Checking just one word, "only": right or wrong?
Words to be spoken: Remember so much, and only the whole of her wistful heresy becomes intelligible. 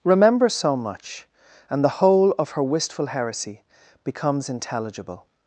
wrong